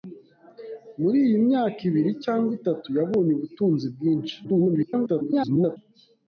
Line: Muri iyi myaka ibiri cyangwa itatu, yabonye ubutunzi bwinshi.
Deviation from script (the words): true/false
true